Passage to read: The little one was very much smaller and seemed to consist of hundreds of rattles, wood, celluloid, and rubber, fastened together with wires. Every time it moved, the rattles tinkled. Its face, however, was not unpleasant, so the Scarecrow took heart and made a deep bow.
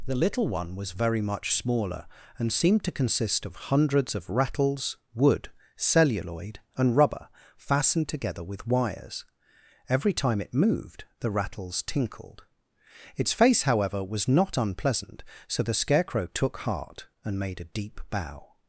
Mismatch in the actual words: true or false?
false